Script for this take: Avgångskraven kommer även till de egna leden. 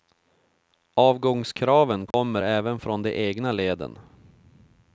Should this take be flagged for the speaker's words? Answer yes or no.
yes